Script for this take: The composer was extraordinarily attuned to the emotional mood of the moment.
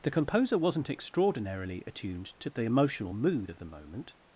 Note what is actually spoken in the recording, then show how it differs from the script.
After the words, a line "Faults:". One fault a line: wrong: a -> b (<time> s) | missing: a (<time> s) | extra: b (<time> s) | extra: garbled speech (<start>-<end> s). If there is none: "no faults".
The composer wasn't extraordinarily attuned to the emotional mood of the moment.
Faults:
wrong: was -> wasn't (0.6 s)